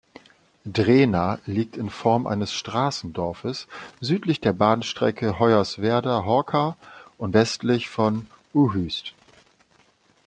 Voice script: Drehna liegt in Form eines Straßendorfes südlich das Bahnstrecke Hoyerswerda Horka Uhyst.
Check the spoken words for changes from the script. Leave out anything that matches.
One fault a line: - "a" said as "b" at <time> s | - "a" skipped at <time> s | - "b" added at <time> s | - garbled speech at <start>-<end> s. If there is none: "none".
- "das" said as "der" at 4.4 s
- "und westlich von" added at 7.2 s